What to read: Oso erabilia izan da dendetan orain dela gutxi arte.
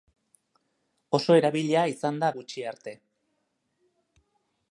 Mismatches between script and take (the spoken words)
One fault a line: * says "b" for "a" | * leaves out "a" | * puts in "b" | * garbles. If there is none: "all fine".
* leaves out "dendetan orain dela"